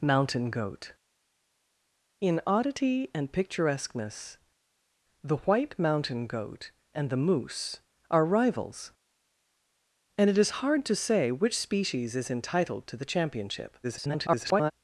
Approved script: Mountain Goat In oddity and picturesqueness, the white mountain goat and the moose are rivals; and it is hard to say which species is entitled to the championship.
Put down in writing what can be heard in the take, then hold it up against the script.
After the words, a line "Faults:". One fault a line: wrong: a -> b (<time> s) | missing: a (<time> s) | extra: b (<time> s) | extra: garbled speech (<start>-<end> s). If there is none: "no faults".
Mountain Goat In oddity and picturesqueness, the white mountain goat and the moose are rivals; and it is hard to say which species is entitled to the championship. [garbled]
Faults:
extra: garbled speech (13.8-14.7 s)